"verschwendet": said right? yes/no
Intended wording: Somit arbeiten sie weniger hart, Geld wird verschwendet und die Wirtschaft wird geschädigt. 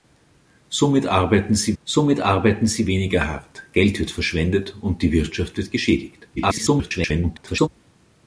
yes